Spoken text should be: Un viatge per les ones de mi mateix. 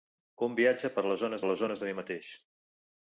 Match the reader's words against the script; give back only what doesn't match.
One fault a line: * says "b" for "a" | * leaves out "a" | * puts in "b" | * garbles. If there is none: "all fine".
* puts in "les ones"